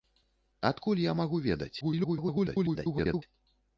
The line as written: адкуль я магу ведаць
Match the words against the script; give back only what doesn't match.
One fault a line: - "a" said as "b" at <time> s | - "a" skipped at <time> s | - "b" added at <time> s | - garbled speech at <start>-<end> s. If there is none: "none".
- garbled speech at 1.8-3.2 s